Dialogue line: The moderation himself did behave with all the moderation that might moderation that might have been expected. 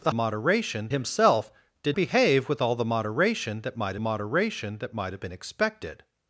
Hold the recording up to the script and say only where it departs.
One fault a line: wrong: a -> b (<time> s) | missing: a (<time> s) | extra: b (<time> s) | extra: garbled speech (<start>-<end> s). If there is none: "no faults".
no faults